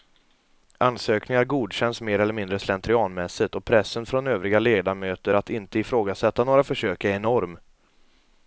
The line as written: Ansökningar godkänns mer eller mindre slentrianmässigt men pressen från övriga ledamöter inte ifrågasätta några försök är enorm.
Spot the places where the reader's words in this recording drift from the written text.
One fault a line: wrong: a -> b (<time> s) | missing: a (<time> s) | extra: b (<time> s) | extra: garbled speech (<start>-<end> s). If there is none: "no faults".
wrong: men -> och (3.5 s)
extra: att (5.3 s)